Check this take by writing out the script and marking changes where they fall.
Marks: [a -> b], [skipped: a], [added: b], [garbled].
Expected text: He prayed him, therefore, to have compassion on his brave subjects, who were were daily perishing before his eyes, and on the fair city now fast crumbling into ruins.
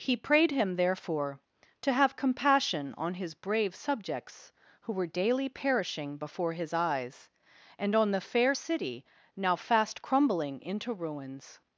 He prayed him, therefore, to have compassion on his brave subjects, who were [skipped: were] daily perishing before his eyes, and on the fair city now fast crumbling into ruins.